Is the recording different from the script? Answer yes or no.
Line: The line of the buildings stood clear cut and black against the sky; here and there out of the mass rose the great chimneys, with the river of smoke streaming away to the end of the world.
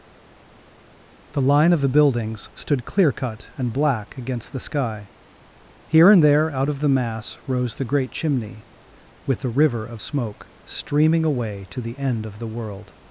yes